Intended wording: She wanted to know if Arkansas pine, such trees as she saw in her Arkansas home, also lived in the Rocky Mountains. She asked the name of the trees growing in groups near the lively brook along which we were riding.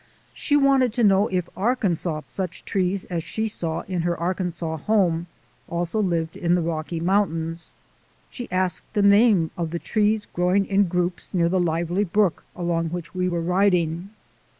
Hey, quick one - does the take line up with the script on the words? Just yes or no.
no